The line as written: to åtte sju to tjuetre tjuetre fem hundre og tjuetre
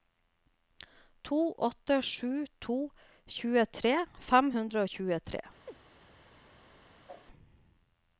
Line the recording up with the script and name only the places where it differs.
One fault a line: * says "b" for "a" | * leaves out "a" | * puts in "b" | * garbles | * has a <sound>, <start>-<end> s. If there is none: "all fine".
* leaves out "tjuetre"
* has a chirp, 5.7-5.8 s
* has a whoosh, 7.1-7.3 s